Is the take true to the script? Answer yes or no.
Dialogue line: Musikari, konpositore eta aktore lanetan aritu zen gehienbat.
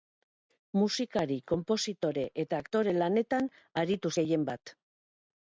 no